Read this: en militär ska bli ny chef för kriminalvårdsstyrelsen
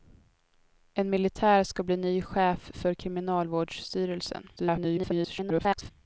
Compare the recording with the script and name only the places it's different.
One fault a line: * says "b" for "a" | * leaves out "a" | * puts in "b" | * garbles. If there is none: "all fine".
* garbles